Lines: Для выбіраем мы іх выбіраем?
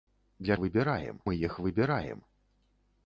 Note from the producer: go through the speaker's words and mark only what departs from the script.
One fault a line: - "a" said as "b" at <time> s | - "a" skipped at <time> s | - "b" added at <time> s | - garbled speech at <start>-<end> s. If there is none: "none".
none